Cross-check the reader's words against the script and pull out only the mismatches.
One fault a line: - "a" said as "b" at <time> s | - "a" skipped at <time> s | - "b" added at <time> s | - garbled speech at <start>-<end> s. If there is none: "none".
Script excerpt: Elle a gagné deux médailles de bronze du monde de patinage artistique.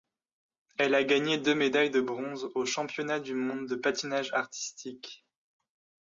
- "aux championnats" added at 2.5 s